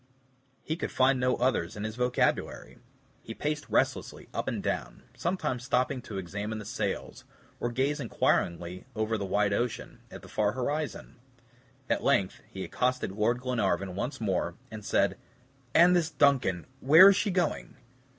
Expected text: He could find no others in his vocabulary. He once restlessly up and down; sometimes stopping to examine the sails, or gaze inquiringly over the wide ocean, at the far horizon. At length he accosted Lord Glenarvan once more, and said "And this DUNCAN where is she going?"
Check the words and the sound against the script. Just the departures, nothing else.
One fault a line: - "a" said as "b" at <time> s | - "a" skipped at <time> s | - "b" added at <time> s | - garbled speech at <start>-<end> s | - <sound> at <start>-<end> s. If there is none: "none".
- "once" said as "paced" at 3.3 s